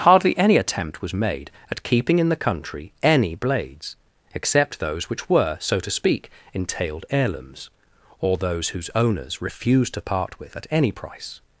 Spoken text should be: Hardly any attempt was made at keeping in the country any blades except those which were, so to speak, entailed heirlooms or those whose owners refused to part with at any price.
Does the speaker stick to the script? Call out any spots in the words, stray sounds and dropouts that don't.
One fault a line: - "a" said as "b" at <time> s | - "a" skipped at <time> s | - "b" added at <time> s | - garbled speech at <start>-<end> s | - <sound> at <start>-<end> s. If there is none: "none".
none